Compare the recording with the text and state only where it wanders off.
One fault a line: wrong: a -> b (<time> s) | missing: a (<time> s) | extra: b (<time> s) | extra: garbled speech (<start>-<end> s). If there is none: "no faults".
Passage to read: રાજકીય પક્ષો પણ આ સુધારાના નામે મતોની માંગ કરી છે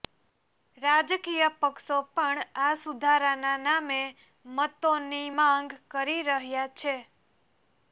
extra: રહ્યા (6.3 s)